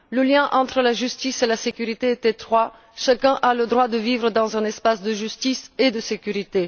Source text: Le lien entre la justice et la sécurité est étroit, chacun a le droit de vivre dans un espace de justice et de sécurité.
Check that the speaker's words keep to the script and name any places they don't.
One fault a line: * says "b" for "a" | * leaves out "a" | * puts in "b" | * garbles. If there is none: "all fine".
all fine